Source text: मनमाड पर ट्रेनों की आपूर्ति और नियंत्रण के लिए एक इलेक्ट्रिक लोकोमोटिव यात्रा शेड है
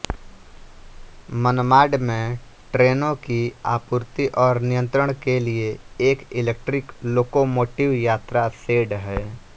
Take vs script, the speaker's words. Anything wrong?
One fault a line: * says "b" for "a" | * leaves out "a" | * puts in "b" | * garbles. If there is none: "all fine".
* says "में" for "पर"